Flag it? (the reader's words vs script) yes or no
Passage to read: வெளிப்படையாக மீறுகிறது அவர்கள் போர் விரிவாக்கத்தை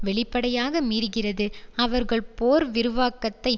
no